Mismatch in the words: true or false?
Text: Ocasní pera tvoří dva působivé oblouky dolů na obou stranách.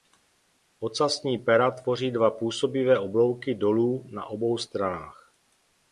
false